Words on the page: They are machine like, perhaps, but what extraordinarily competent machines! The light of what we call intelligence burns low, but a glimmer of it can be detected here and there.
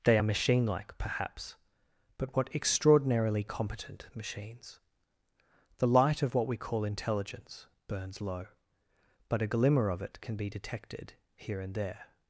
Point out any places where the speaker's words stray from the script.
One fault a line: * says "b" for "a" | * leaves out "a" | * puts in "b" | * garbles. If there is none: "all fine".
all fine